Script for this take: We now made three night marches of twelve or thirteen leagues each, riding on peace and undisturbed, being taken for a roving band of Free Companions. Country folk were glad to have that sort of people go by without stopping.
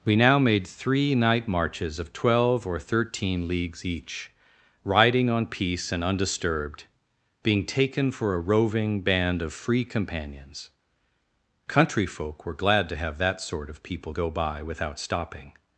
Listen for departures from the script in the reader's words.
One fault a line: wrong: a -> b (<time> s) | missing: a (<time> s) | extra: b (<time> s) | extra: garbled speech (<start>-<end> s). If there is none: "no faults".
no faults